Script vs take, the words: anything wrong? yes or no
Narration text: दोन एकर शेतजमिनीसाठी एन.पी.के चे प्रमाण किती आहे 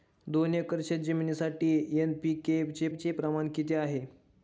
yes